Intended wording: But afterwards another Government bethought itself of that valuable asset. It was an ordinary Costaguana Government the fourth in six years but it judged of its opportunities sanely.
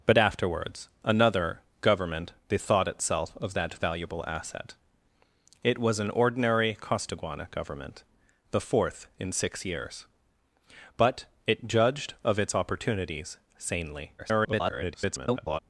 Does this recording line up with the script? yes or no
no